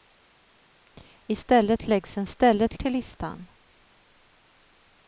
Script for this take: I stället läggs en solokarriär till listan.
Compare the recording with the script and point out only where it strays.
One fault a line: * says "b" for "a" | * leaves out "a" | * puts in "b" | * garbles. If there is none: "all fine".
* says "stället" for "solokarriär"